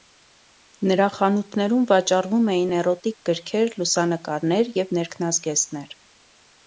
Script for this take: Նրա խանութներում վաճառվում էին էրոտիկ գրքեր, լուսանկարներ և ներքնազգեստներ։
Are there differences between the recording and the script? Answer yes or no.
no